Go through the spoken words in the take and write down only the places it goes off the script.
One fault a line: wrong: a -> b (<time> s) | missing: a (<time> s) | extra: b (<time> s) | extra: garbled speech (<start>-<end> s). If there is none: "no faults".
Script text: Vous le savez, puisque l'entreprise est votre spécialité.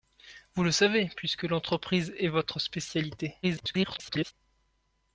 extra: garbled speech (3.4-4.3 s)